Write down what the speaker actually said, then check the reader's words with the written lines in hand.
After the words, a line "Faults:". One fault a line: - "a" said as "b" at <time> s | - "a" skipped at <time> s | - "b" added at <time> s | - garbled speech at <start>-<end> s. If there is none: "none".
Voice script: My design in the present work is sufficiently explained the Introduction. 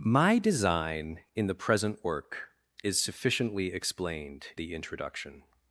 My design in the present work is sufficiently explained the Introduction.
Faults:
none